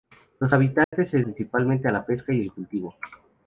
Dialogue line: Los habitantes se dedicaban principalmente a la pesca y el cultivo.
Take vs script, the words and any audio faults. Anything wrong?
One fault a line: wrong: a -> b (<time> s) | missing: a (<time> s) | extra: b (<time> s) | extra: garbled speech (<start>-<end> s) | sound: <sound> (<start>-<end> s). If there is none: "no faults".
sound: dropout (0.8-0.9 s)
missing: dedicaban (1.2 s)